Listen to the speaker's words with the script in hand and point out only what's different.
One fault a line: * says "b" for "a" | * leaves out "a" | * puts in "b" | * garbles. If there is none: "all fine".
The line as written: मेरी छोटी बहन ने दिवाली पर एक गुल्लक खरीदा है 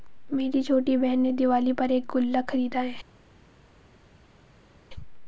all fine